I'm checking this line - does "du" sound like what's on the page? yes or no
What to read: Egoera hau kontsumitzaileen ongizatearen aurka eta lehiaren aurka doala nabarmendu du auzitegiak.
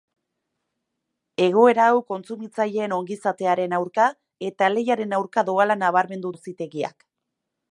no